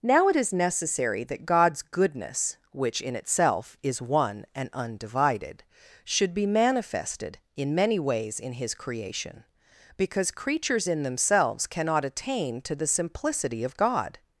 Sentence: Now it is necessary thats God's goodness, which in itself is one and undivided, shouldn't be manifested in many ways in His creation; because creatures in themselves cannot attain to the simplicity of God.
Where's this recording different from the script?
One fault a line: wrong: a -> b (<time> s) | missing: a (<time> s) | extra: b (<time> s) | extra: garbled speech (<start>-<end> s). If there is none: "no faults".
wrong: thats -> that (1.2 s)
wrong: shouldn't -> should (6.0 s)